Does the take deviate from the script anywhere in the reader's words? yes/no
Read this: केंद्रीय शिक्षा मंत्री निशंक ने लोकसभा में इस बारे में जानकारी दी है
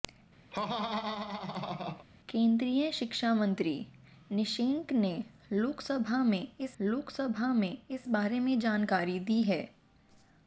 yes